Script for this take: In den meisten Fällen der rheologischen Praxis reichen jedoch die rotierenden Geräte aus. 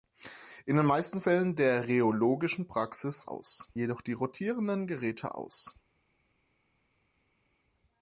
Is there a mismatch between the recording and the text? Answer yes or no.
yes